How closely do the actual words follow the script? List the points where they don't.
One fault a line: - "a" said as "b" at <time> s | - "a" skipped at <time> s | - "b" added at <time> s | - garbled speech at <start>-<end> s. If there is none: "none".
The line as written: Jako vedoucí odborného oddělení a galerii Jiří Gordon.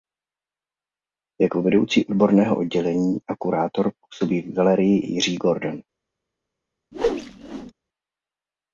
- "kurátor působí v" added at 3.4 s